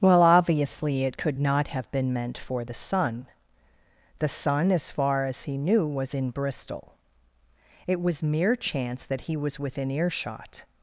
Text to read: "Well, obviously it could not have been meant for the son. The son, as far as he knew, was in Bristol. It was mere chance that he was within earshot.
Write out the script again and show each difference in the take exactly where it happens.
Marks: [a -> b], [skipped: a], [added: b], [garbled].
"Well, obviously it could not have been meant for the son. The son, as far as he knew, was in Bristol. It was mere chance that he was within earshot.